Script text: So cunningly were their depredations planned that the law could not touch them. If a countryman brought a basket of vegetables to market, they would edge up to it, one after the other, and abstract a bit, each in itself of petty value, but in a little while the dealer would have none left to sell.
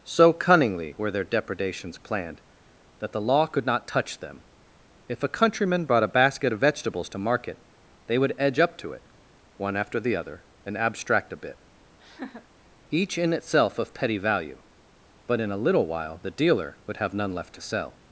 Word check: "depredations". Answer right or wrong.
right